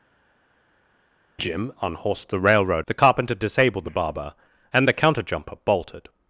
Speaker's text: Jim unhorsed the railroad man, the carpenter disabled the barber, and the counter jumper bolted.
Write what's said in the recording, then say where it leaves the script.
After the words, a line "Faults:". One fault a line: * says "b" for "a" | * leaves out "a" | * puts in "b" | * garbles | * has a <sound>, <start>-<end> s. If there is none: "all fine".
Jim unhorsed the railroad the carpenter disabled the barber, and the counter jumper bolted.
Faults:
* leaves out "man"